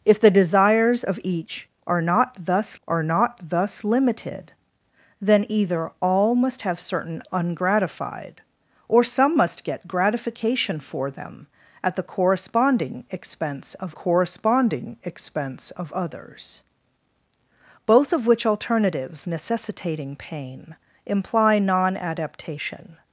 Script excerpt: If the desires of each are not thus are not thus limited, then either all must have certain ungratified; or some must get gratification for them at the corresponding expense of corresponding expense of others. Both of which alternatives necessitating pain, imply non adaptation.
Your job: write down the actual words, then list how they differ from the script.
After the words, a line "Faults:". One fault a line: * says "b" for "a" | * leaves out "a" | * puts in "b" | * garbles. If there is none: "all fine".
If the desires of each are not thus are not thus limited, then either all must have certain ungratified; or some must get gratification for them at the corresponding expense of corresponding expense of others. Both of which alternatives necessitating pain, imply non adaptation.
Faults:
all fine